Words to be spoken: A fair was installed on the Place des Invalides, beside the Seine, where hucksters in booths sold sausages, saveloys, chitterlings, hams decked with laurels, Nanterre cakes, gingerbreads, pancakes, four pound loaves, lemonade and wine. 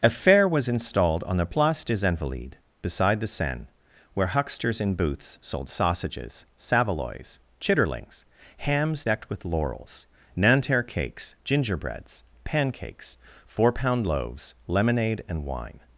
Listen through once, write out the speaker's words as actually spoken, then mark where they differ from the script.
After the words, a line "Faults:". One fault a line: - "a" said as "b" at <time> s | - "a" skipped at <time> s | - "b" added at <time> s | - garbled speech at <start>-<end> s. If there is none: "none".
A fair was installed on the Place des Invalides, beside the Seine, where hucksters in booths sold sausages, saveloys, chitterlings, hams decked with laurels, Nanterre cakes, gingerbreads, pancakes, four pound loaves, lemonade and wine.
Faults:
none